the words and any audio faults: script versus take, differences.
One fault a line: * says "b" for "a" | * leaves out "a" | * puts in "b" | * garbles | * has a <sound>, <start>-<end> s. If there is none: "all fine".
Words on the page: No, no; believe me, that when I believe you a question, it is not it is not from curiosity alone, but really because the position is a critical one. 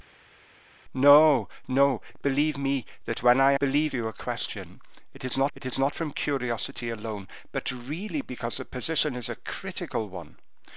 all fine